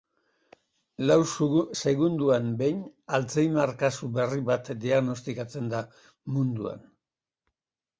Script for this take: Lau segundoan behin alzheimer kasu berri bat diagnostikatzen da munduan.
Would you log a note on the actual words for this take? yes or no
no